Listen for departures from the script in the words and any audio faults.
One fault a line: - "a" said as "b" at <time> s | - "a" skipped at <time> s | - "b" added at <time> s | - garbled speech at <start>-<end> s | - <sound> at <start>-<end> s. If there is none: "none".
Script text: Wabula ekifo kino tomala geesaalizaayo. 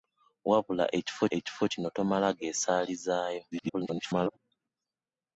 - "ekifo" added at 1.4 s
- garbled speech at 3.5-4.4 s